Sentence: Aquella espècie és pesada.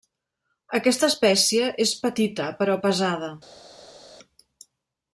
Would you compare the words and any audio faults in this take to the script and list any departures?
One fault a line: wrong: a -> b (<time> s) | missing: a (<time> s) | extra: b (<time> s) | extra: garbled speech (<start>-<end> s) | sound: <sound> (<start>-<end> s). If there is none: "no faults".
wrong: Aquella -> Aquesta (0.8 s)
extra: petita però (2.1 s)